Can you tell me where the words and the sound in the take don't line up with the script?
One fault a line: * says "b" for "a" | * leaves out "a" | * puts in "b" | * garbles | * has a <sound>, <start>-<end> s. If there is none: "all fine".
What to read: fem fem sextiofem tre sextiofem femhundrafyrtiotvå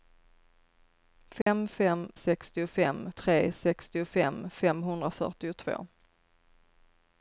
* has a dropout, 1.4-1.5 s